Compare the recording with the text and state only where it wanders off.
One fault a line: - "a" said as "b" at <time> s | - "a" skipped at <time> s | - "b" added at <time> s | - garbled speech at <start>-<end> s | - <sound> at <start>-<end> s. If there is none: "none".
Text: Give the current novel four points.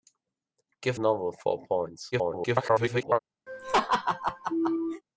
- "the current" skipped at 1.0 s
- garbled speech at 2.1-3.2 s
- laugh at 3.5-5.0 s